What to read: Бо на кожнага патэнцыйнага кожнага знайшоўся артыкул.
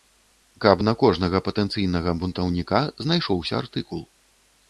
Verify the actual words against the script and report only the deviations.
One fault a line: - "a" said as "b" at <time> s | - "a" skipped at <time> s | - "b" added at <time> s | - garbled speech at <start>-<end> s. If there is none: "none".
- "Бо" said as "Каб" at 0.6 s
- "кожнага" said as "бунтаўніка" at 2.2 s